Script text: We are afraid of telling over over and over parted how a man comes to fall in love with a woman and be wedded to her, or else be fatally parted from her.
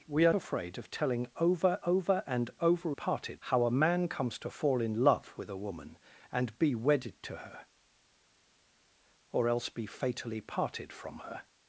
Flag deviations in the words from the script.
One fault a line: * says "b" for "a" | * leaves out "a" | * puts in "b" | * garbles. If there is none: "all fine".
all fine